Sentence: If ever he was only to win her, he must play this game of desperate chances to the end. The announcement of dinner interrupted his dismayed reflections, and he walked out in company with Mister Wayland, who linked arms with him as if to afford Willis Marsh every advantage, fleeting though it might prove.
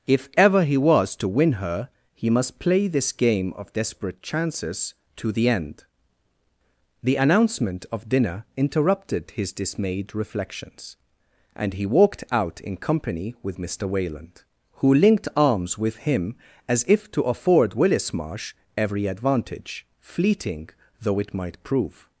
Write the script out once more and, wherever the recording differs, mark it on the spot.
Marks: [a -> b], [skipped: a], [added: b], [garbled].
If ever he was [skipped: only] to win her, he must play this game of desperate chances to the end. The announcement of dinner interrupted his dismayed reflections, and he walked out in company with Mister Wayland, who linked arms with him as if to afford Willis Marsh every advantage, fleeting though it might prove.